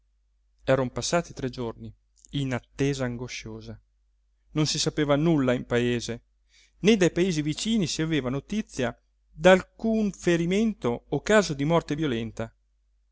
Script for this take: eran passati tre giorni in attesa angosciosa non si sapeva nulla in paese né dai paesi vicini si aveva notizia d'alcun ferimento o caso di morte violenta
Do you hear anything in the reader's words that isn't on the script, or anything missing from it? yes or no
no